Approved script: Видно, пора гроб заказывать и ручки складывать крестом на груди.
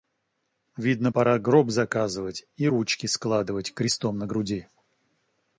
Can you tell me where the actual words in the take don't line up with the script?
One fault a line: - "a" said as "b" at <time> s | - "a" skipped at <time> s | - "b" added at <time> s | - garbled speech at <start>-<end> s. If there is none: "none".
none